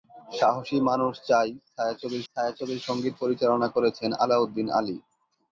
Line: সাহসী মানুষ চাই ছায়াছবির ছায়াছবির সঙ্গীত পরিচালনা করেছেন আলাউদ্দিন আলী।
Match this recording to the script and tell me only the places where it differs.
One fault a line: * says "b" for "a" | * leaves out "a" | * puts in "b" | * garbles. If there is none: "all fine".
all fine